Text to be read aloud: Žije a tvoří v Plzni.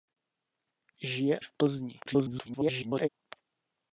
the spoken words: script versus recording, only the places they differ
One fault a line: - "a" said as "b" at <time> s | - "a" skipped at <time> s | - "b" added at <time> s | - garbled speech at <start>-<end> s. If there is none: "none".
- "a tvoří" skipped at 1.4 s
- garbled speech at 2.1-3.1 s